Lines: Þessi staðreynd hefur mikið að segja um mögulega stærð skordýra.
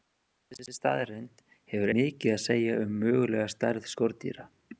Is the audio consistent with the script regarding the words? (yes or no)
yes